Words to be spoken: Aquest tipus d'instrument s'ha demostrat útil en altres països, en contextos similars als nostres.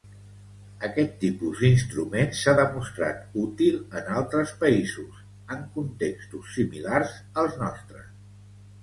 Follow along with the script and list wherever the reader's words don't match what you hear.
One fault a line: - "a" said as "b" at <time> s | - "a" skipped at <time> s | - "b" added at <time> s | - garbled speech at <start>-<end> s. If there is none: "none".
none